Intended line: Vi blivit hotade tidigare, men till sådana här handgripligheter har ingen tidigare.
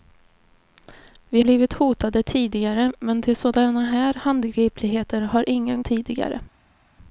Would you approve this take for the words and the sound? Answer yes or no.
yes